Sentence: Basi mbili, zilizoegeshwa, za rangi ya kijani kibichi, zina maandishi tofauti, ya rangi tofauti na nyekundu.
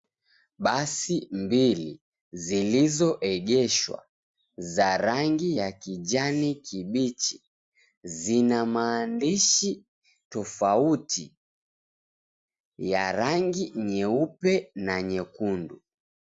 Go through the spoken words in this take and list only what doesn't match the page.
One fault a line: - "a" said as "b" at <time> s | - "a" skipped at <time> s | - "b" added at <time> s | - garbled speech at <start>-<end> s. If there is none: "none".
- "tofauti" said as "nyeupe" at 13.7 s